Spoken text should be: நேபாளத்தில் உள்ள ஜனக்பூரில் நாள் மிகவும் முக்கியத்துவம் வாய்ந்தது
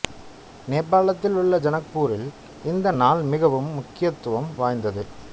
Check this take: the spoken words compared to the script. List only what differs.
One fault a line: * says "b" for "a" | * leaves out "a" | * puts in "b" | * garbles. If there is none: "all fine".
* puts in "இந்த"